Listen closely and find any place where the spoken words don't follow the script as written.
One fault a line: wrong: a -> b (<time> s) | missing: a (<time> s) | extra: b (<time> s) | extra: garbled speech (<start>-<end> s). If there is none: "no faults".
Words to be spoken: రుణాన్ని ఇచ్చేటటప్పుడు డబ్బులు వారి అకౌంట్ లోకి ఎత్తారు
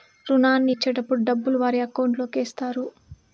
no faults